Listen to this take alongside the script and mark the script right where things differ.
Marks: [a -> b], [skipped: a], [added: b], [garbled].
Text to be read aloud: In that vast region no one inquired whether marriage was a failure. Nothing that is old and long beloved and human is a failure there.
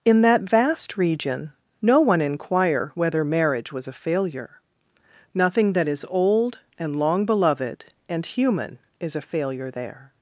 In that vast region no one [inquired -> inquire] whether marriage was a failure. Nothing that is old and long beloved and human is a failure there.